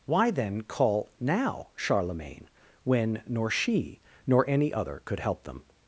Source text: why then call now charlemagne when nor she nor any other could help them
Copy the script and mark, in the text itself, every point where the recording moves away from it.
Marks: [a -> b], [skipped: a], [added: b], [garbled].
why then call now charlemagne when nor she nor any other could help them